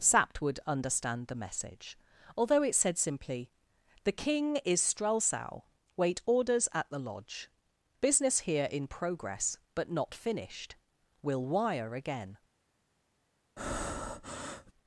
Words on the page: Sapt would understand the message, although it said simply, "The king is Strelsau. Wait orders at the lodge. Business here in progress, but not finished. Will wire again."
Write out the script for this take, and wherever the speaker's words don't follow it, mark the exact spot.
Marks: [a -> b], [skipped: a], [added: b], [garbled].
Sapt would understand the message, although it said simply, "The king is Strelsau. Wait orders at the lodge. Business here in progress, but not finished. Will wire again."